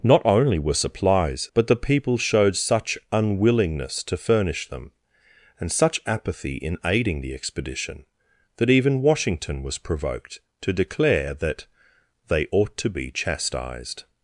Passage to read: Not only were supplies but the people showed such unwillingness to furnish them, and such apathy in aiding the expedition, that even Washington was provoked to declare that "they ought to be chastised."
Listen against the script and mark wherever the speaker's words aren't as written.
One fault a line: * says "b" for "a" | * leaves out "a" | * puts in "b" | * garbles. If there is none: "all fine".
all fine